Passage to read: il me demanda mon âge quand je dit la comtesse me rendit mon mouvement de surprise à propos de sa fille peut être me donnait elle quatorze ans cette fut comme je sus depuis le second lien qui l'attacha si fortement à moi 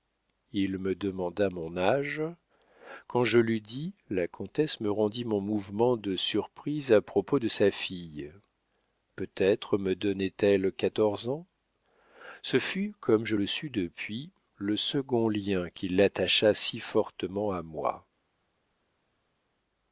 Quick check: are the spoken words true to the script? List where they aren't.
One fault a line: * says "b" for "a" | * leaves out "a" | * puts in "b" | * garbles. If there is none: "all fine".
* puts in "l'eus"
* says "ce" for "cette"
* puts in "le"